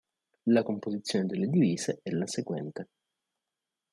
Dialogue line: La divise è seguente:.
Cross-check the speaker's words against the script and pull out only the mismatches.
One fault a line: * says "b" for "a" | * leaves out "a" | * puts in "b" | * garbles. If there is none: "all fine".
* puts in "composizione delle"
* puts in "la"